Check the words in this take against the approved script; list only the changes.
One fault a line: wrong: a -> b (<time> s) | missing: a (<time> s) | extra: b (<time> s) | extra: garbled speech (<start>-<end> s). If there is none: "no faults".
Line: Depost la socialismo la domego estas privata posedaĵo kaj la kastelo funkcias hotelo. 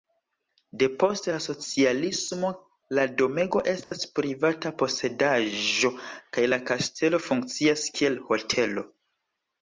extra: kiel (8.0 s)